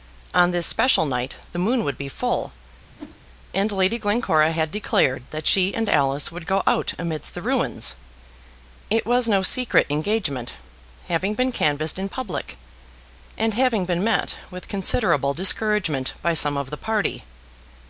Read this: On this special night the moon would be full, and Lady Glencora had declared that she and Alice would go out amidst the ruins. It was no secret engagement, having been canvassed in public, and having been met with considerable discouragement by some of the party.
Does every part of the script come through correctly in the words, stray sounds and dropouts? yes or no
no